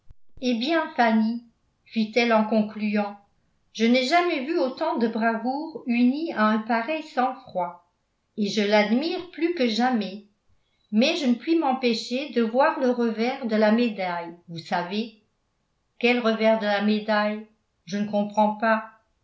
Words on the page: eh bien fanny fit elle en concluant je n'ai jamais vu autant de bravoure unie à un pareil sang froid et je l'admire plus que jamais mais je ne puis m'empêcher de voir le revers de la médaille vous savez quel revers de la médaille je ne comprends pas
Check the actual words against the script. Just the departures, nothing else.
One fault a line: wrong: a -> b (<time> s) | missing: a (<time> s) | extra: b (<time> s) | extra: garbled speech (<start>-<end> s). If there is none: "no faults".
no faults